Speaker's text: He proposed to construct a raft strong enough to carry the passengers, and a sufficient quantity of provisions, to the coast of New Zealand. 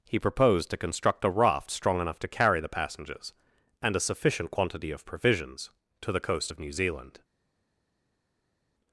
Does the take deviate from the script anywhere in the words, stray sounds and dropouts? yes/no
no